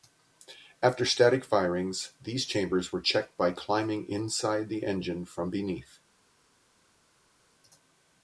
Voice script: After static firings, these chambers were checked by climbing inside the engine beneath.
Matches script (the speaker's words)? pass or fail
fail